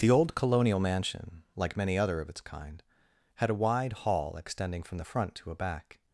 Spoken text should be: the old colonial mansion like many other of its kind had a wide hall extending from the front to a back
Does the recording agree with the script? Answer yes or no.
yes